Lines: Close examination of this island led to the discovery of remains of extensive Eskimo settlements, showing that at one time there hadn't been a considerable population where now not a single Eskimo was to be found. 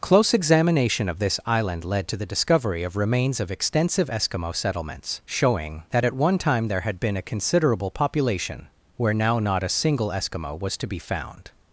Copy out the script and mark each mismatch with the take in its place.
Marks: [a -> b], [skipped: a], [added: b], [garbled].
Close examination of this island led to the discovery of remains of extensive Eskimo settlements, showing that at one time there [hadn't -> had] been a considerable population where now not a single Eskimo was to be found.